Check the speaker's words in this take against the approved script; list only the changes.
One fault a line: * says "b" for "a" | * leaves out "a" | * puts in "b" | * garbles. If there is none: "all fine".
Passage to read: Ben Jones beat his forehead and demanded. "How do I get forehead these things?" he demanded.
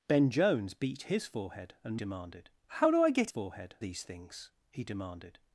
all fine